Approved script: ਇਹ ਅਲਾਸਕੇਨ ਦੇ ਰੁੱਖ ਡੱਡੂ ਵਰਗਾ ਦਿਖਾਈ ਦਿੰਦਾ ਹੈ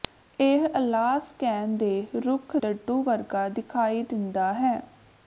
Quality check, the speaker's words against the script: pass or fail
pass